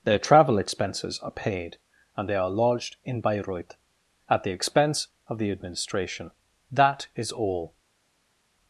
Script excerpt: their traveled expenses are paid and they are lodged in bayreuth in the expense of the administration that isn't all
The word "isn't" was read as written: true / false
false